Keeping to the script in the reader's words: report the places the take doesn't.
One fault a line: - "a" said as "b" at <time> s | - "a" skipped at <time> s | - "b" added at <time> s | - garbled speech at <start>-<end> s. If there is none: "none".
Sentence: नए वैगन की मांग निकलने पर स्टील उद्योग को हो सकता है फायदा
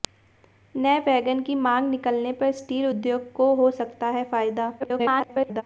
- garbled speech at 4.8-5.6 s